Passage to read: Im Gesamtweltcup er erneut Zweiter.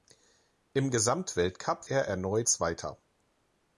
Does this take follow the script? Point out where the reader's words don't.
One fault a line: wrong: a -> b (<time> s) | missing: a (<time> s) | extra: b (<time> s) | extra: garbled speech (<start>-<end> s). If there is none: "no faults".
no faults